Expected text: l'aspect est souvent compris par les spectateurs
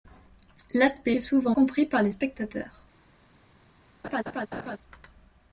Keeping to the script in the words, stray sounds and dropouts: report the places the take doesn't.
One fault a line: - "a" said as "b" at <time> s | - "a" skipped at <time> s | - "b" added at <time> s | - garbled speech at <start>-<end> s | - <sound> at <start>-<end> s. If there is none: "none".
- laugh at 4.0-4.8 s